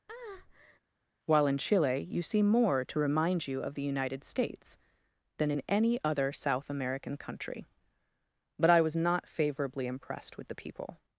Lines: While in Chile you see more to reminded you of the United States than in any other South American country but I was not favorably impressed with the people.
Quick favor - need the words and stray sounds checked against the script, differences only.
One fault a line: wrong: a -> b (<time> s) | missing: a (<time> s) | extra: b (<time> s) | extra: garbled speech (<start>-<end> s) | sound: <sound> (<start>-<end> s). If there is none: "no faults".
sound: breath (0.1-0.8 s)
wrong: reminded -> remind (3.0 s)